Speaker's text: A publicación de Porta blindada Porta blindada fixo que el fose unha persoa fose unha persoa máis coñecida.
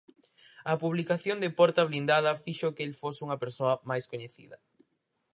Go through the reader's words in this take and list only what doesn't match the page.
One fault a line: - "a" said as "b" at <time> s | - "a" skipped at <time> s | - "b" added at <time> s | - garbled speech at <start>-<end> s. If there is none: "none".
- "Porta blindada" skipped at 2.4 s
- "fose unha persoa" skipped at 3.7 s